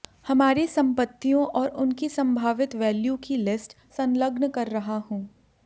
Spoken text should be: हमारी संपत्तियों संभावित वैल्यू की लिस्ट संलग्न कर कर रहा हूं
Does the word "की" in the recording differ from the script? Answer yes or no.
no